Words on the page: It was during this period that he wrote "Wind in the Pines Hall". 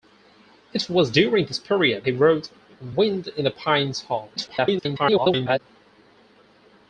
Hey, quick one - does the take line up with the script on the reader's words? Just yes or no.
no